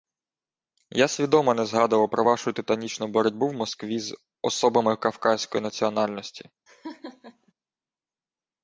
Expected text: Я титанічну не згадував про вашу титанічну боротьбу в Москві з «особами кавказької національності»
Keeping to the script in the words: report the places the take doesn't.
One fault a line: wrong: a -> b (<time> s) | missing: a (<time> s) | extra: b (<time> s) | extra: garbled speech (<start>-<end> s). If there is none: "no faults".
wrong: титанічну -> свідомо (1.1 s)